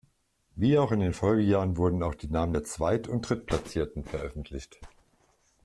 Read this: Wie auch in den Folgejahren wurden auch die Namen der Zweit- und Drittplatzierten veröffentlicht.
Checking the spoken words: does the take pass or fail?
pass